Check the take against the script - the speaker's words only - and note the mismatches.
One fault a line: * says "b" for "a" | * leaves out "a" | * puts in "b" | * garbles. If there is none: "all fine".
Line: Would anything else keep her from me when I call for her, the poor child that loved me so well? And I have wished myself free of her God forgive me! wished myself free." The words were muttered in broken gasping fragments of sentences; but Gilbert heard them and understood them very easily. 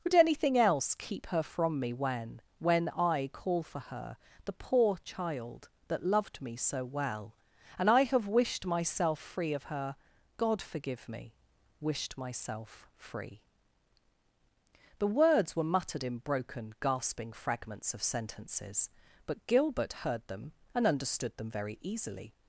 * puts in "when"